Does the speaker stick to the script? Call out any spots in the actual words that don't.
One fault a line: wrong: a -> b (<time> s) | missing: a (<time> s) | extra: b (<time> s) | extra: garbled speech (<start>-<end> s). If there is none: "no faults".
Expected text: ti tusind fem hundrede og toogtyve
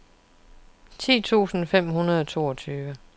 no faults